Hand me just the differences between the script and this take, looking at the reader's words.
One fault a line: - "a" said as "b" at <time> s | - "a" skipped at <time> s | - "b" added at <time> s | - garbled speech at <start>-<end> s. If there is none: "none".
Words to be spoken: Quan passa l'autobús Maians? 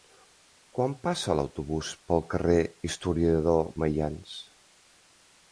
- "pel carrer Historiador" added at 2.1 s